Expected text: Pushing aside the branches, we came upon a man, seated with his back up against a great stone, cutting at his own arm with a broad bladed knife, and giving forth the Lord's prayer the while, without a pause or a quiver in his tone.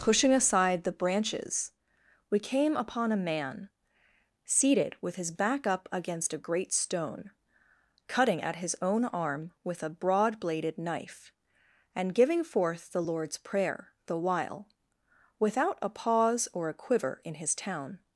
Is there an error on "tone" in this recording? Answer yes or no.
yes